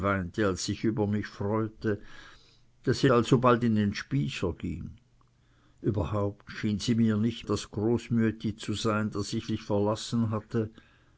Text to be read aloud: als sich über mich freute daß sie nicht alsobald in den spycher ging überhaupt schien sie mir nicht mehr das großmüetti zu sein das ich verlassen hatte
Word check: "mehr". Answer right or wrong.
wrong